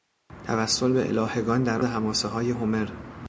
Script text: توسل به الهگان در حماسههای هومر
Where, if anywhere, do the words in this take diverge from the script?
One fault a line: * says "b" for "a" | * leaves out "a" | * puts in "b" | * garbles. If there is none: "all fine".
all fine